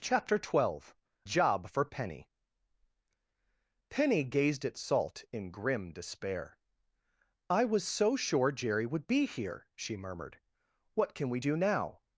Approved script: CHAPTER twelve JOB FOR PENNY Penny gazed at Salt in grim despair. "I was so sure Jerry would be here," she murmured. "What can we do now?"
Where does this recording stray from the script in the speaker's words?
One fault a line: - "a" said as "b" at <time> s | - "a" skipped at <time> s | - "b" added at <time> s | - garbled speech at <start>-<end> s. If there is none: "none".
none